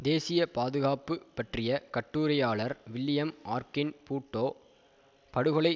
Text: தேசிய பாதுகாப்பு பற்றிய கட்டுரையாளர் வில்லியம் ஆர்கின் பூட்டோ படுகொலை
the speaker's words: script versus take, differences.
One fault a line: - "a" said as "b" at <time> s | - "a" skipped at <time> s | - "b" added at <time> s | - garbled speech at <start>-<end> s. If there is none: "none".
none